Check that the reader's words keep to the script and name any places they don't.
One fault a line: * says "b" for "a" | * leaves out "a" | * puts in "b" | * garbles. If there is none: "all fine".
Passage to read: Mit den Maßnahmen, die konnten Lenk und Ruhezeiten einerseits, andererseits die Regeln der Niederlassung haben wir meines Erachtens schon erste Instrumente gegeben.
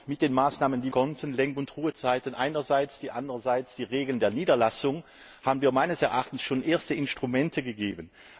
all fine